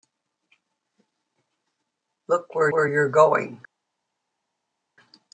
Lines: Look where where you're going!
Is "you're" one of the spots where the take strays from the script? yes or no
no